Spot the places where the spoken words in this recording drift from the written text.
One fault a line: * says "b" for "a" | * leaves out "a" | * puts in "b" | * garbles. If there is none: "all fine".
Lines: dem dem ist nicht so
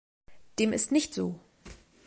* leaves out "dem"